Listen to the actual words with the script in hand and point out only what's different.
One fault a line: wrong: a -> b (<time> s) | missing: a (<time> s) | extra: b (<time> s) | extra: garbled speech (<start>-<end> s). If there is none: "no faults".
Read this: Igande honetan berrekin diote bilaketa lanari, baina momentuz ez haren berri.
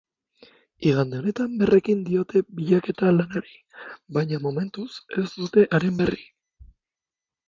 extra: dute (5.4 s)